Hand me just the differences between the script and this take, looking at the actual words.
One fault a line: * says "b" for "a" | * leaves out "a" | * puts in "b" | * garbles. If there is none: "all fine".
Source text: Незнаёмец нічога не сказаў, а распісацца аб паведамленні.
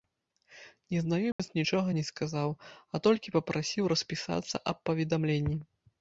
* puts in "толькі папрасіў"